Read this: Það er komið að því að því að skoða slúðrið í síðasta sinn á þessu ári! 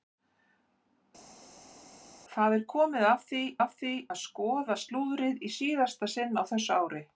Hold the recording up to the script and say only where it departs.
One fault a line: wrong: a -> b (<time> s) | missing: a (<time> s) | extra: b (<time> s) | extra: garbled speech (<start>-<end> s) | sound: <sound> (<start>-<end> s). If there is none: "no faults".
no faults